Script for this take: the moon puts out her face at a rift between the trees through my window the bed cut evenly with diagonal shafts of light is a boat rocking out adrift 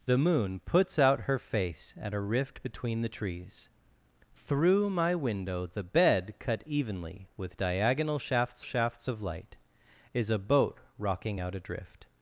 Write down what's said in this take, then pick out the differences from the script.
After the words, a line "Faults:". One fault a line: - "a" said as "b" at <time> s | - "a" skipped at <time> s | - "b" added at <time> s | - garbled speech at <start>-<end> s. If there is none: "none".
the moon puts out her face at a rift between the trees through my window the bed cut evenly with diagonal shafts shafts of light is a boat rocking out adrift
Faults:
- "shafts" added at 8.6 s